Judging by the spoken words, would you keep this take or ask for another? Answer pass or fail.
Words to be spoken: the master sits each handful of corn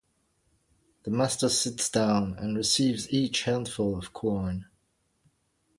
fail